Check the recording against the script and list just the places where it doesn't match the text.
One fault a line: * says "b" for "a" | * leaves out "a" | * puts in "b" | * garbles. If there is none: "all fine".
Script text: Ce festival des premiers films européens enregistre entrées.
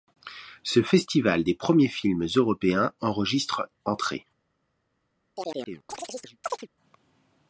all fine